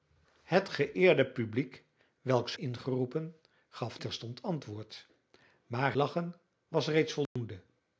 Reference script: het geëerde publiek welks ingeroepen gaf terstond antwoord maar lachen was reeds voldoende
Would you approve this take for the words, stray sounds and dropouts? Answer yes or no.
no